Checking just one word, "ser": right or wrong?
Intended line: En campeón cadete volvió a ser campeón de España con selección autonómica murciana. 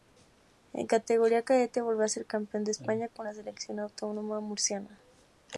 right